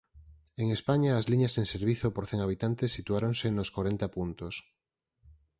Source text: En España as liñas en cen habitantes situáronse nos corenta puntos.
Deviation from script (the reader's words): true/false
true